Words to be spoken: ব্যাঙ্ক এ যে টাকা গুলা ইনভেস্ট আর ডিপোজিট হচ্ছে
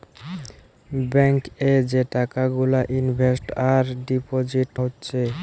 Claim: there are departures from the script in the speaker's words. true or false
false